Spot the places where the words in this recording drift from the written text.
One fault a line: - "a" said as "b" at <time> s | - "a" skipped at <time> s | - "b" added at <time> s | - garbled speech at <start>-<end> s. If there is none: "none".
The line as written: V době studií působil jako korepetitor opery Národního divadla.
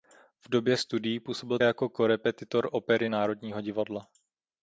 none